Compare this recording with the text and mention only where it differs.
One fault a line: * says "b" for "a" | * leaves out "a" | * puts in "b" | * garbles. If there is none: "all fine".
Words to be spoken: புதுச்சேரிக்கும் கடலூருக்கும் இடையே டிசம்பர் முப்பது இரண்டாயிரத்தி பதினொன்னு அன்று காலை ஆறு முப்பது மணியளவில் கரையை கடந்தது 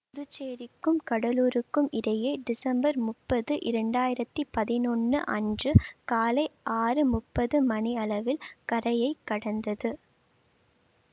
all fine